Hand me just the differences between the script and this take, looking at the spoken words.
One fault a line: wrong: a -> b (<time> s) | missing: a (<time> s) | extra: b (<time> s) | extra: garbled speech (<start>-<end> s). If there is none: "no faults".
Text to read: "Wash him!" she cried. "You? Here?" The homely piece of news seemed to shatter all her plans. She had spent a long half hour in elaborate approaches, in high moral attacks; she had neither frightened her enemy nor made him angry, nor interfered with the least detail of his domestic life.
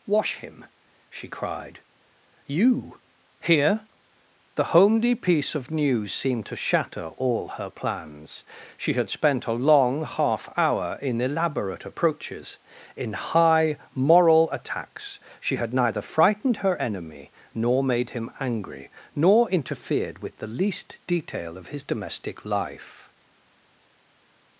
no faults